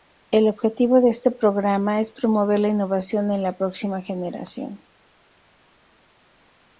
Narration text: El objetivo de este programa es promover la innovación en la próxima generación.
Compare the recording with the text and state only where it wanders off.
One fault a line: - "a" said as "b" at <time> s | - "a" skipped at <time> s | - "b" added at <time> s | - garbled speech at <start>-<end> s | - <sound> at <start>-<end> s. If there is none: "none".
none